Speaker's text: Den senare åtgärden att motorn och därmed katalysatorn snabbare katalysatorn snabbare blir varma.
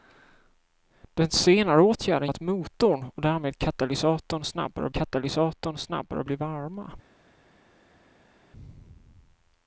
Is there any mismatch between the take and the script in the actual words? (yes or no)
no